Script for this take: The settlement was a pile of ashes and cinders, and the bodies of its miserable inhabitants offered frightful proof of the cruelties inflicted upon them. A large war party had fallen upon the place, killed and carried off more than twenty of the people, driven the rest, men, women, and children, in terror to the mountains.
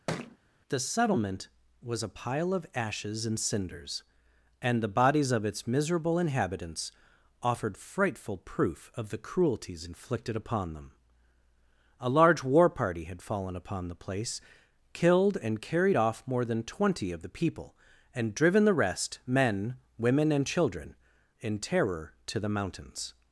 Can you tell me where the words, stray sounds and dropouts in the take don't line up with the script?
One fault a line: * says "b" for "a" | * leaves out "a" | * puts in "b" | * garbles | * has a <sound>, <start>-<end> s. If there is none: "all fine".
* has a thud, 0.1-0.4 s
* puts in "and"